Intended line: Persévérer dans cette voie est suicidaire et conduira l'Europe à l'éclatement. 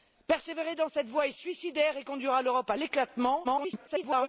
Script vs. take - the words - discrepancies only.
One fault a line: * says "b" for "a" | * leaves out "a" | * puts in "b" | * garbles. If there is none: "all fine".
* garbles